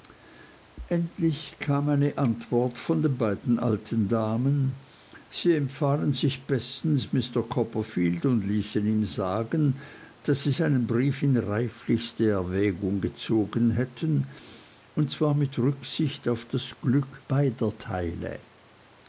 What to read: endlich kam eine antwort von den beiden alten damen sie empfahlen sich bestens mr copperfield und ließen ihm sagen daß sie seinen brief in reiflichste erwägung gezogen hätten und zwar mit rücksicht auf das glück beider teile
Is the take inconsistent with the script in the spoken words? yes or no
no